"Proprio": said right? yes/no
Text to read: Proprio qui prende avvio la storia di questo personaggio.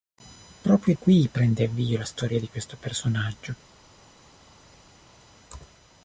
yes